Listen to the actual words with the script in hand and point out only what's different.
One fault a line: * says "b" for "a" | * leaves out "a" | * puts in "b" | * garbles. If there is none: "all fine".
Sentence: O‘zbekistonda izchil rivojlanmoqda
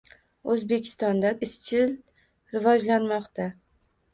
all fine